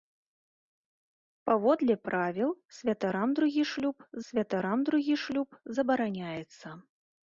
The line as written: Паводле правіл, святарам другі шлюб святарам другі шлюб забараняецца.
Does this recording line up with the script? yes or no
yes